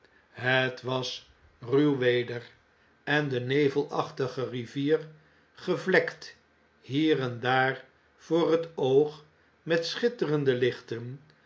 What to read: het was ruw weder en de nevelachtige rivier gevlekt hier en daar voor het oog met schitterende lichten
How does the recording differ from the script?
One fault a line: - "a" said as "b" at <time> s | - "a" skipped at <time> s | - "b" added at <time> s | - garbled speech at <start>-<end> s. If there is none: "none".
none